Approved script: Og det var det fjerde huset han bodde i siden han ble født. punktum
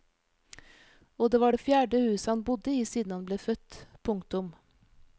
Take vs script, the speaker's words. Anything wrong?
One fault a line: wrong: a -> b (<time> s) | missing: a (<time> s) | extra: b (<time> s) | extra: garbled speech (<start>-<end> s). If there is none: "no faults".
no faults